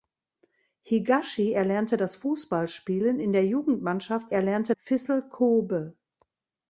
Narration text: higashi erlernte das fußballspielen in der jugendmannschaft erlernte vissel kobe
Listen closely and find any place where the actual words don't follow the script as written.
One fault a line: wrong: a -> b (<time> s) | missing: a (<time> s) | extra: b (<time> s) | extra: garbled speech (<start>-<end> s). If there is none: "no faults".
no faults